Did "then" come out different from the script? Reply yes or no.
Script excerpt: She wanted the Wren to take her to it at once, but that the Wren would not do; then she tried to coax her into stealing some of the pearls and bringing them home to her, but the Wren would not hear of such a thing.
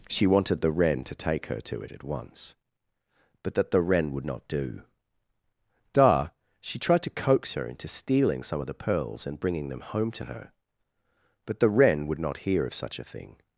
yes